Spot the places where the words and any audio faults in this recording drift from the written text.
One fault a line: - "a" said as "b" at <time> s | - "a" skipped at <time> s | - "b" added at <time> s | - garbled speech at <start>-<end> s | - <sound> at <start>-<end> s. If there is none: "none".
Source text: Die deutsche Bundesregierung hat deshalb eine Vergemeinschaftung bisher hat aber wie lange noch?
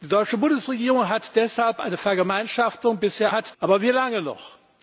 none